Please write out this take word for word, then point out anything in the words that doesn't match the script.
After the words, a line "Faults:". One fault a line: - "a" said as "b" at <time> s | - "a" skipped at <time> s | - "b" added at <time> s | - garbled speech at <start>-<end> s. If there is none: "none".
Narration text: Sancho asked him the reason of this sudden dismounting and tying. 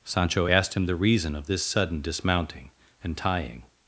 Sancho asked him the reason of this sudden dismounting and tying.
Faults:
none